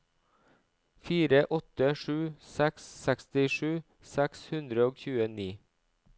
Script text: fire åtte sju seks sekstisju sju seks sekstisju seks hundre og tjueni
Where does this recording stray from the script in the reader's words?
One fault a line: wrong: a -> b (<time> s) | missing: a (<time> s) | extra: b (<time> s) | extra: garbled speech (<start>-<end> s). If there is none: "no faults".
missing: sju seks sekstisju (3.7 s)